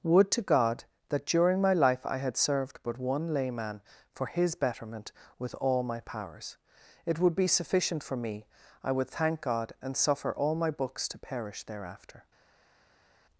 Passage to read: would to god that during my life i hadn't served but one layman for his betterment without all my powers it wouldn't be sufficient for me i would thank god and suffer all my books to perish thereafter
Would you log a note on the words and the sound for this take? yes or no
yes